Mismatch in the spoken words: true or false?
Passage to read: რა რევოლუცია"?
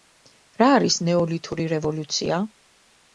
true